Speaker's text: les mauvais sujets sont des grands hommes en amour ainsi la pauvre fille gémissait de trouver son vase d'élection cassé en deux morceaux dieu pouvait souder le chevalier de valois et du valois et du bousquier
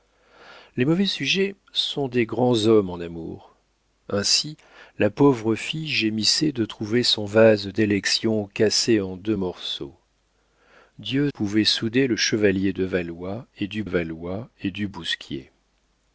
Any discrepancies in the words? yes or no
no